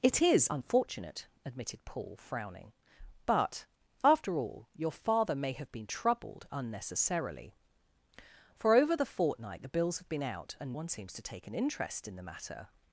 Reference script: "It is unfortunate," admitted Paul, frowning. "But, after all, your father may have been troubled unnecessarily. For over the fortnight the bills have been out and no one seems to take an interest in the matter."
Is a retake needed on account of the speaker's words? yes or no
yes